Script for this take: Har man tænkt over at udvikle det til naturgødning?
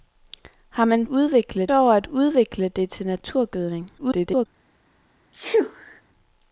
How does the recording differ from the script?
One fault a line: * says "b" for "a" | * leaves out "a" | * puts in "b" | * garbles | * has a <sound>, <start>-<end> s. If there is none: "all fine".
* says "udvikle" for "tænkt"
* garbles
* has a sneeze, 5.3-6.0 s